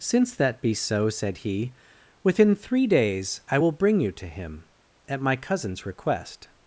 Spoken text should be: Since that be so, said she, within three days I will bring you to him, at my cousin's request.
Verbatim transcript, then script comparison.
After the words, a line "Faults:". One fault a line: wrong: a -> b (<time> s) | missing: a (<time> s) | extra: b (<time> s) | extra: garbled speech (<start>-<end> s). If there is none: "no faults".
Since that be so, said he, within three days I will bring you to him, at my cousin's request.
Faults:
wrong: she -> he (1.3 s)